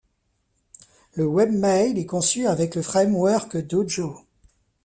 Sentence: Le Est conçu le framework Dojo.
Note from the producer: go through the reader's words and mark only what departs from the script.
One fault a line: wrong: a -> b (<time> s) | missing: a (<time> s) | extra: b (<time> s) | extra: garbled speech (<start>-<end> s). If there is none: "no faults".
extra: Webmail (1.3 s)
extra: avec (2.5 s)